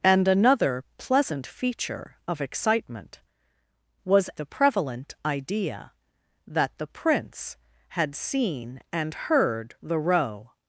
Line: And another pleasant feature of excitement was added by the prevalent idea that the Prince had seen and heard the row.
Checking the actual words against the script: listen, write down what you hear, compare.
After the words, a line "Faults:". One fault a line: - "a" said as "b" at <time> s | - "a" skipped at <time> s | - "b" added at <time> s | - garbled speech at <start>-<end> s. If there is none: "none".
And another pleasant feature of excitement was the prevalent idea that the Prince had seen and heard the row.
Faults:
- "added by" skipped at 4.3 s